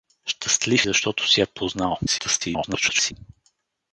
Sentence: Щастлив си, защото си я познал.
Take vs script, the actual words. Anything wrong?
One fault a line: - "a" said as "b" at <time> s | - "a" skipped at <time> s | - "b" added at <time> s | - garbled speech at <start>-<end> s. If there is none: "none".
- "си" skipped at 0.9 s
- garbled speech at 2.1-3.1 s